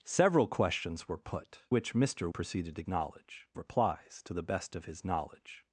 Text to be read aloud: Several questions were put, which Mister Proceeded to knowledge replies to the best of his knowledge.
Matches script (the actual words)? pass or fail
pass